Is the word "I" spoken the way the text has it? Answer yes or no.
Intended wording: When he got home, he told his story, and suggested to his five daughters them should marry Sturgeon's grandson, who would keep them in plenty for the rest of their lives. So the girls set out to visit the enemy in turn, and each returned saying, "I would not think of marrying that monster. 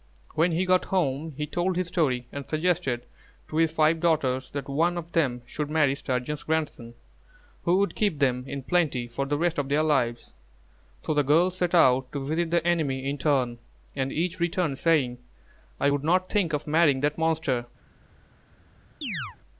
yes